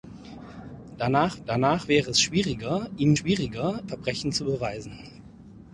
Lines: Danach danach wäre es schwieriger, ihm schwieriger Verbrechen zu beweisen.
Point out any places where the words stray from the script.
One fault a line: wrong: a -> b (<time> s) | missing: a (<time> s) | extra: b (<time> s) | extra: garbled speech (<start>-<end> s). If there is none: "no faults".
no faults